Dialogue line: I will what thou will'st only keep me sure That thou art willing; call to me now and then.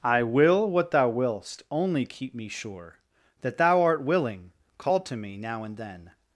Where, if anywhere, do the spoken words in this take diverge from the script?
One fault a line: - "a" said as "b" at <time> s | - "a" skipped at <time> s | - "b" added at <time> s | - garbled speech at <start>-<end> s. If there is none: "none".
none